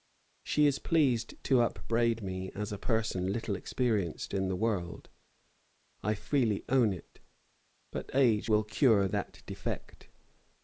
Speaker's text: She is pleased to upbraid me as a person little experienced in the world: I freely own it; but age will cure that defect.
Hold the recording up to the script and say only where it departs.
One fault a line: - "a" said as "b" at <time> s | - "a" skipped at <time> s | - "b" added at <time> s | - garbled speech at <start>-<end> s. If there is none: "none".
none